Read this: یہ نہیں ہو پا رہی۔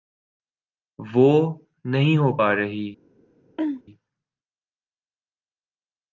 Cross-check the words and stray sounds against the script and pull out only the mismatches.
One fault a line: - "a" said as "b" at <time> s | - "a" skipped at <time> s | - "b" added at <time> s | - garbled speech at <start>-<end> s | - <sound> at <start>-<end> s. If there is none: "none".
- "یہ" said as "وہ" at 1.0 s
- throat clearing at 3.6-3.8 s